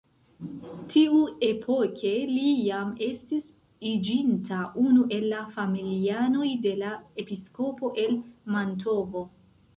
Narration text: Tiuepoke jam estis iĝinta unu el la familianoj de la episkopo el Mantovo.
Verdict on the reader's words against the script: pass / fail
fail